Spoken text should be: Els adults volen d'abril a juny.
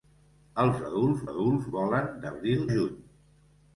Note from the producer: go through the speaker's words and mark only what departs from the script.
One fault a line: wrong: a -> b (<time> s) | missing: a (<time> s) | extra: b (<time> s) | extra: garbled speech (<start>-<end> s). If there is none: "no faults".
extra: adults (1.3 s)
missing: a (2.6 s)